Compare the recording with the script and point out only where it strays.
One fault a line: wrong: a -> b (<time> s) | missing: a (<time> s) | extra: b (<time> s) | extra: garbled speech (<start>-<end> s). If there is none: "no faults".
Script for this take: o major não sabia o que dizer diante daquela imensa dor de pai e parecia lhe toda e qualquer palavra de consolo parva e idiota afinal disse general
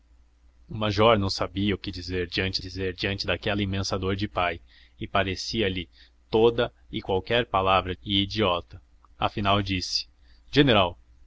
extra: dizer diante (2.6 s)
missing: de consolo parva (7.9 s)